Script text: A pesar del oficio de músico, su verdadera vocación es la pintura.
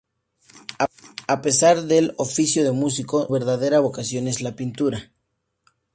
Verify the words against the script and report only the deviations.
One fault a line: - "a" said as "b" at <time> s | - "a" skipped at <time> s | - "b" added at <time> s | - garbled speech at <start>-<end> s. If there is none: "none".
- "su" skipped at 3.3 s